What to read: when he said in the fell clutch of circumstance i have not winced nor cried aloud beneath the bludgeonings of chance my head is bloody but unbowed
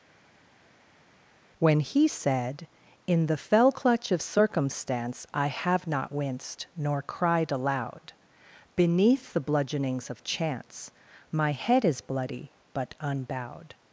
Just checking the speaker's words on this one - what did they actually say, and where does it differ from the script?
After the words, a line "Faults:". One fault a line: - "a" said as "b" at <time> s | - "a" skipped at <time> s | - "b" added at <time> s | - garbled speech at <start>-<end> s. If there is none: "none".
when he said in the fell clutch of circumstance i have not winced nor cried aloud beneath the bludgeonings of chance my head is bloody but unbowed
Faults:
none